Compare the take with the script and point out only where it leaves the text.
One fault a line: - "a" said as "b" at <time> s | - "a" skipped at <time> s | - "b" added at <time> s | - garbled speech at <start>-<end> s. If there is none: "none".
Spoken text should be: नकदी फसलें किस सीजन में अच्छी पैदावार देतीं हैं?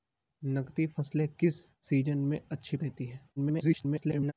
- "पैदावार" skipped at 2.8 s
- garbled speech at 3.4-4.3 s